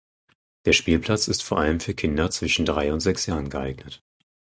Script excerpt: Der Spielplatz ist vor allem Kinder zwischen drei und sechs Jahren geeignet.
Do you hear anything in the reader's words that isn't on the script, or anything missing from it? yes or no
yes